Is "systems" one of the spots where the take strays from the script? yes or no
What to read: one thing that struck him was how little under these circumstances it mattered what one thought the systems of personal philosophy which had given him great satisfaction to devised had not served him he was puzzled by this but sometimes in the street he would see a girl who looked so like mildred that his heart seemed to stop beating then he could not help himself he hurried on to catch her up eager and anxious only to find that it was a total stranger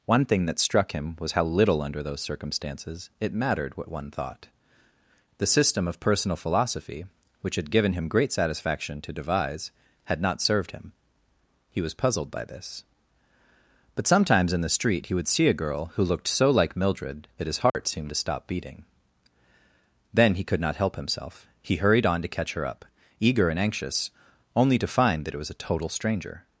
yes